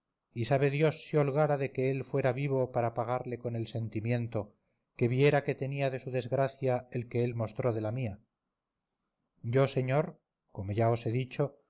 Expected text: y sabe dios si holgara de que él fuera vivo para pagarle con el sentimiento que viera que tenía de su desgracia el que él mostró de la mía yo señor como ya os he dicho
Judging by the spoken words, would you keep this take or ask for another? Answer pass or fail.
pass